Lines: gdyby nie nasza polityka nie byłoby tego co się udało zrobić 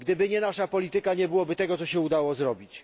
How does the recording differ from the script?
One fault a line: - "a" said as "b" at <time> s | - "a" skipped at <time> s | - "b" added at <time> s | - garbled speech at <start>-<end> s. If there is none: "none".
none